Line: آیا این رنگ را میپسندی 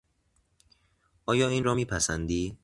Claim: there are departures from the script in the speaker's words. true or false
true